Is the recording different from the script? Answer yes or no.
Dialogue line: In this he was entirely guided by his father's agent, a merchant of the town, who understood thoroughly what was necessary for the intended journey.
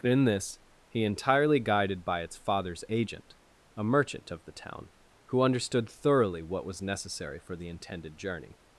yes